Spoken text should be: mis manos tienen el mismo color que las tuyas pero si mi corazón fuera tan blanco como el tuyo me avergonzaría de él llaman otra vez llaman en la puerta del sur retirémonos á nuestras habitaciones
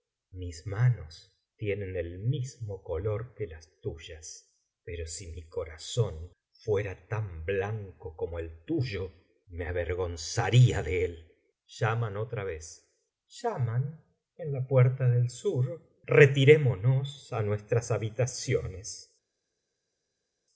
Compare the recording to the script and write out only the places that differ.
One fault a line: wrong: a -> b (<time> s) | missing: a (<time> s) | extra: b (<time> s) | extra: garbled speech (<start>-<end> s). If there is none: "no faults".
no faults